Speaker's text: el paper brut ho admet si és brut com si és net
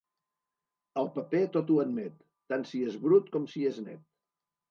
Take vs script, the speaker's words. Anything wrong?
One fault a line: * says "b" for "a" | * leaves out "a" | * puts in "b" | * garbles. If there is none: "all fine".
* says "tot" for "brut"
* puts in "tant"